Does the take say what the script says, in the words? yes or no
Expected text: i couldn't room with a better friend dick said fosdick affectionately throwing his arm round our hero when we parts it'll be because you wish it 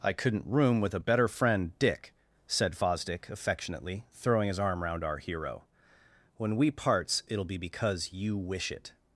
yes